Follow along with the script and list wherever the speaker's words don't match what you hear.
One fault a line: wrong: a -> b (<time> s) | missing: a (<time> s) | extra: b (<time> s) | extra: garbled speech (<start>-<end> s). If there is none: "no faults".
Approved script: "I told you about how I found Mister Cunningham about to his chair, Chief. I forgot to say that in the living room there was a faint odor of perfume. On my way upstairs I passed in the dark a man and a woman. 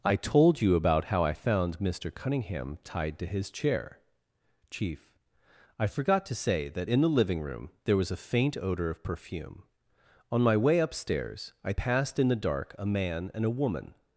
wrong: about -> tied (2.8 s)